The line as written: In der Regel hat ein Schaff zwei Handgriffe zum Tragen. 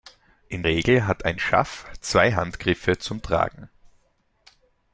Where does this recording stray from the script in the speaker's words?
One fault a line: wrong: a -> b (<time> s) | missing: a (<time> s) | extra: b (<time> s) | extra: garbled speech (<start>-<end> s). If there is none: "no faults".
missing: der (0.6 s)